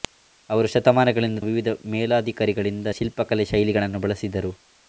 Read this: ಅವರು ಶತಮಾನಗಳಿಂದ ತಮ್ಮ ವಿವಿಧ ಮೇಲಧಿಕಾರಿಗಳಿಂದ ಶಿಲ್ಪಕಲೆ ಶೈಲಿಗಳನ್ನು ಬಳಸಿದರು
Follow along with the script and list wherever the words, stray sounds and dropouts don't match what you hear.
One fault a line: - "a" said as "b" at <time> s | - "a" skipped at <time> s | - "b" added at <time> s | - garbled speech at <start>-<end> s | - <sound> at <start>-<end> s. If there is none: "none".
- "ತಮ್ಮ" skipped at 1.4 s